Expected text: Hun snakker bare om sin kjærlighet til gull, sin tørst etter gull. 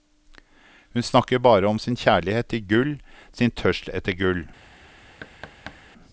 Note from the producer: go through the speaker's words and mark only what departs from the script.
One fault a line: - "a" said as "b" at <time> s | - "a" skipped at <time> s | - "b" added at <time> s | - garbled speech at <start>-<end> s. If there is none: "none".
none